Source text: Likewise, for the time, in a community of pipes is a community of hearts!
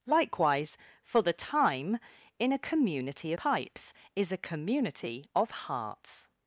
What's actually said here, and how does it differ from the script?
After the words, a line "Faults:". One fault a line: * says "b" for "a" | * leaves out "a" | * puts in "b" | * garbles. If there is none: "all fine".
Likewise, for the time, in a community pipes is a community of hearts!
Faults:
* leaves out "of"